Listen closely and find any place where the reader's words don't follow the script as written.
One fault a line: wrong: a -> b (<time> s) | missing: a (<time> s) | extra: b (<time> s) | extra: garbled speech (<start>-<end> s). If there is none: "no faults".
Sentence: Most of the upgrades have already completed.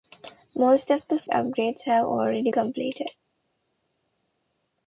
no faults